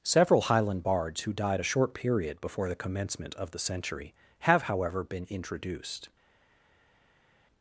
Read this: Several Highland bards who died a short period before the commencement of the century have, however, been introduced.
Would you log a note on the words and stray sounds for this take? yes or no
no